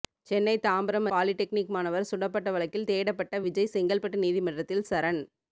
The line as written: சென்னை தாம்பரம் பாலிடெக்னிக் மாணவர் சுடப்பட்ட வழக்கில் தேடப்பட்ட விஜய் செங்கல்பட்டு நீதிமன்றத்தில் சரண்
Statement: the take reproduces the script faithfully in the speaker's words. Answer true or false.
true